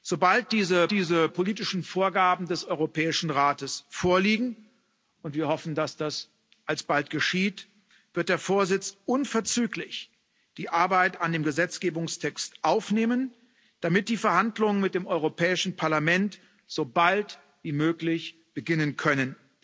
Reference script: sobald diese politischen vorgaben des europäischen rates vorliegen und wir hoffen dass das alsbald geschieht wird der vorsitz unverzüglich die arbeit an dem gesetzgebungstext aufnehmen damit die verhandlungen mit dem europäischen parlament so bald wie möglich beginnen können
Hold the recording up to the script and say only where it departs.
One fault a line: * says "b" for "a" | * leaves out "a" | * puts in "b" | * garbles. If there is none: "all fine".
* puts in "diese"